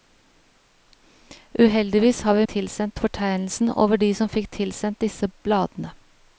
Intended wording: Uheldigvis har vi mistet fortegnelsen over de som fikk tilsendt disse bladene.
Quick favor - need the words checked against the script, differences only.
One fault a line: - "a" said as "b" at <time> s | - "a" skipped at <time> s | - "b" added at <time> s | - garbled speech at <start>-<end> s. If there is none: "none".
- "mistet" said as "tilsendt" at 2.5 s